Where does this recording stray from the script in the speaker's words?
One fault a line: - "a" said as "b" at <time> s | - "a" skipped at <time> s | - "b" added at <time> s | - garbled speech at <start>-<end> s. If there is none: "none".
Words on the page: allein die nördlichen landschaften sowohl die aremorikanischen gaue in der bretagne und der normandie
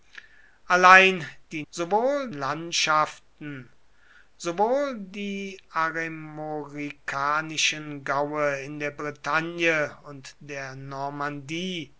- "nördlichen" said as "sowohl" at 1.7 s